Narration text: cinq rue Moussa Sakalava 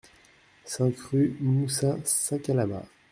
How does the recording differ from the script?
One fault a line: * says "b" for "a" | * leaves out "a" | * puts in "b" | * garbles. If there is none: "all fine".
all fine